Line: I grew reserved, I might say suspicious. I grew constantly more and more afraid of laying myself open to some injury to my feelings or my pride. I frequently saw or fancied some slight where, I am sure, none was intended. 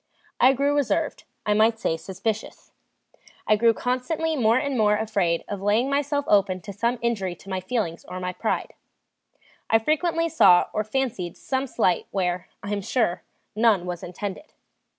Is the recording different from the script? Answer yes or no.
no